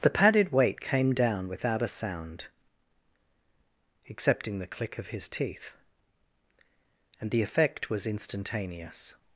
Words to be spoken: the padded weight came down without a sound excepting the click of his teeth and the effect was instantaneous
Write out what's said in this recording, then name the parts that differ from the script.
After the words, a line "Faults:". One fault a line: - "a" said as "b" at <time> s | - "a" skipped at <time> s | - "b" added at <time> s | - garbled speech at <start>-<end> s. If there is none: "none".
the padded weight came down without a sound excepting the click of his teeth and the effect was instantaneous
Faults:
none